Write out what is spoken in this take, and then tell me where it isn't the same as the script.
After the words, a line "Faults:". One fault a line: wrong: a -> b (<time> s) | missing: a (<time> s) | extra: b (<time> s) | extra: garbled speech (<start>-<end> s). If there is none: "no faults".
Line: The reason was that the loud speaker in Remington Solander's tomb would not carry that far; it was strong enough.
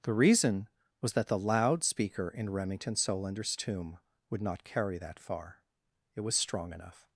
The reason was that the loud speaker in Remington Solander's tomb would not carry that far; it was strong enough.
Faults:
no faults